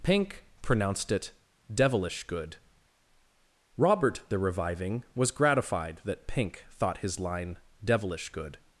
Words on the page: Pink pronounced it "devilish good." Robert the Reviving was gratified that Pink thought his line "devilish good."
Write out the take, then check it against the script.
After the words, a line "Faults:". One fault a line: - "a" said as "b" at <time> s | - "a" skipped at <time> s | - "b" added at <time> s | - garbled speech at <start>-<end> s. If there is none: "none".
Pink pronounced it "devilish good." Robert the Reviving was gratified that Pink thought his line "devilish good."
Faults:
none